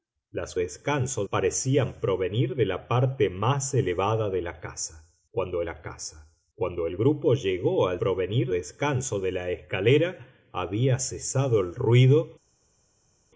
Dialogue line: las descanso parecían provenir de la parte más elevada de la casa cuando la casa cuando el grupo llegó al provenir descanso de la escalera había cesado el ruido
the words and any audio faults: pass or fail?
pass